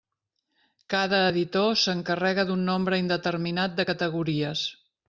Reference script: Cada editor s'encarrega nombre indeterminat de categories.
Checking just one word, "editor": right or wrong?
right